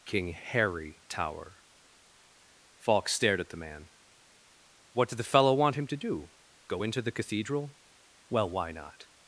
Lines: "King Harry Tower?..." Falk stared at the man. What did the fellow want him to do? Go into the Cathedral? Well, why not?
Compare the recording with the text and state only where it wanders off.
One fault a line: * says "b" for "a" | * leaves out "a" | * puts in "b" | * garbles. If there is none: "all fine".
all fine